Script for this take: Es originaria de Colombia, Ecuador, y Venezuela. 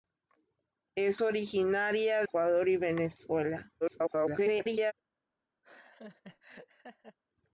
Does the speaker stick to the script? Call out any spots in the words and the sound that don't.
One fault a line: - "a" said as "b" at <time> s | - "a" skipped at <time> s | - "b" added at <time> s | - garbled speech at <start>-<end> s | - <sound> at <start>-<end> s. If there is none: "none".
- "de Colombia" skipped at 2.2 s
- garbled speech at 3.8-4.9 s
- laugh at 5.6-7.2 s